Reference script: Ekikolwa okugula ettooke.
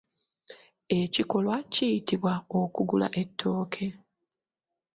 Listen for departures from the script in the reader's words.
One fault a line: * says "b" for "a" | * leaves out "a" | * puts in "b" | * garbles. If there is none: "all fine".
* puts in "kiyitibwa"